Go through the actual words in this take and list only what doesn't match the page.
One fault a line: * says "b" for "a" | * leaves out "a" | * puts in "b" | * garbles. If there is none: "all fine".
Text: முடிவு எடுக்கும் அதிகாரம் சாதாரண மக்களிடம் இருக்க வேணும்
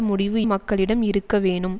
* leaves out "எடுக்கும் அதிகாரம் சாதாரண"